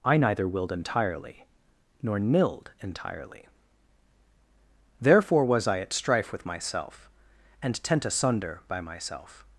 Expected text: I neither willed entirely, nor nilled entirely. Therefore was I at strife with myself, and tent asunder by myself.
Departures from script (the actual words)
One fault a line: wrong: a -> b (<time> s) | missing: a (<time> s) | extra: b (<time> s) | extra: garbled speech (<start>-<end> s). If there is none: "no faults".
no faults